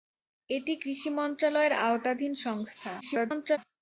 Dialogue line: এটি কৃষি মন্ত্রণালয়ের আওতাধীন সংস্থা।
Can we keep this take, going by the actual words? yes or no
no